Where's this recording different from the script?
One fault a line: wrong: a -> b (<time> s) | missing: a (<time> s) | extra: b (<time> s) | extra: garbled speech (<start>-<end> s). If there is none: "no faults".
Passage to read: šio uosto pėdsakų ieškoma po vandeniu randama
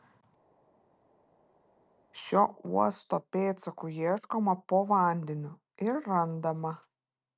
extra: ir (5.9 s)